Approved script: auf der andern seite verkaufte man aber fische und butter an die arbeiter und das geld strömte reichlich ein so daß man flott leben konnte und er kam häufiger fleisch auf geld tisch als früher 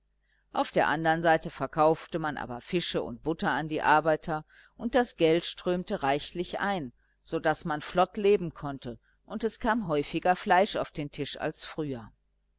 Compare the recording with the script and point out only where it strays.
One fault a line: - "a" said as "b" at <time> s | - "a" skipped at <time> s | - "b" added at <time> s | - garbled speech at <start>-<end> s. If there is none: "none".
- "er" said as "es" at 9.4 s
- "geld" said as "den" at 10.9 s